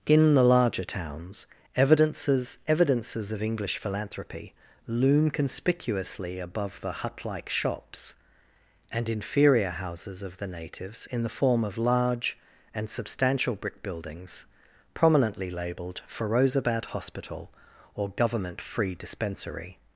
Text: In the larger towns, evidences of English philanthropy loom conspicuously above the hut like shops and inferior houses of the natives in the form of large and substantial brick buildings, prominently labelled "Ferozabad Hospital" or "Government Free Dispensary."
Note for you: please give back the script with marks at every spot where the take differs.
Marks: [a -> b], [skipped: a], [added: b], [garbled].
In the larger towns, evidences [added: evidences] of English philanthropy loom conspicuously above the hut like shops and inferior houses of the natives in the form of large and substantial brick buildings, prominently labelled "Ferozabad Hospital" or "Government Free Dispensary."